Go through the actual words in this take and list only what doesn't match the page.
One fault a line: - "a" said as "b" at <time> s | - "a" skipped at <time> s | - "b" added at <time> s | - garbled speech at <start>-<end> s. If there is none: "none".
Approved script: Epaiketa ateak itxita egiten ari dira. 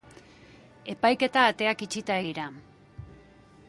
- "egiten ari" skipped at 2.2 s